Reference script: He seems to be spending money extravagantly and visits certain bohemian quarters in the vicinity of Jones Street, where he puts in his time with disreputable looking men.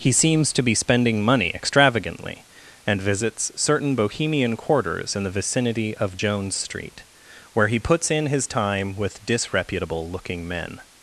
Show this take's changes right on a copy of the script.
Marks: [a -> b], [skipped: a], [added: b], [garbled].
He seems to be spending money extravagantly and visits certain bohemian quarters in the vicinity of Jones Street, where he puts in his time with disreputable looking men.